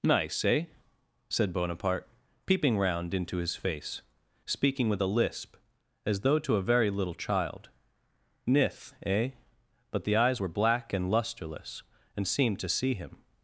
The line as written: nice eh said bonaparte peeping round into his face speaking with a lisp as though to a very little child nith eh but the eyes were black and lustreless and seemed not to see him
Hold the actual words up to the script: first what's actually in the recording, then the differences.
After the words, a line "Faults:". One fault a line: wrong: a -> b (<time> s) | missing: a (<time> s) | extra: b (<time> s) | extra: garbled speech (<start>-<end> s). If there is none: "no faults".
nice eh said bonaparte peeping round into his face speaking with a lisp as though to a very little child nith eh but the eyes were black and lustreless and seemed to see him
Faults:
missing: not (12.6 s)